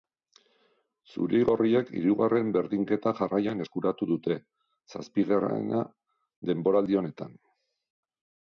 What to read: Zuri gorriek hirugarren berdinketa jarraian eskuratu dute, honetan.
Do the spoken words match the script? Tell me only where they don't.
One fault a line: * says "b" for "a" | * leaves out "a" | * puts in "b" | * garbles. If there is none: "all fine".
* puts in "zazpigarrena denboraldi"